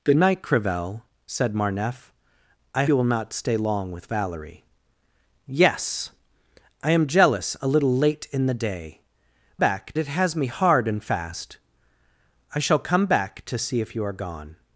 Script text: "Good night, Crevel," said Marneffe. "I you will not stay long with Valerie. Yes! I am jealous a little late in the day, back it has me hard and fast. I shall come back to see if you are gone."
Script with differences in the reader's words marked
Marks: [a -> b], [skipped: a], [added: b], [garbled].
"Good night, Crevel," said Marneffe. "I you will not stay long with Valerie. Yes! I am jealous a little late in the day, back it has me hard and fast. I shall come back to see if you are gone."